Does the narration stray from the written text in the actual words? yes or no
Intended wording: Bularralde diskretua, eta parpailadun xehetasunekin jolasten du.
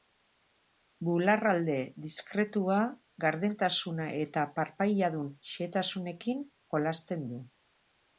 yes